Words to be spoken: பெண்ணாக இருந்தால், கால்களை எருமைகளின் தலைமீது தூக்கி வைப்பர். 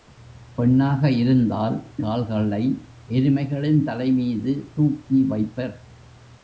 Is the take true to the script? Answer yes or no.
yes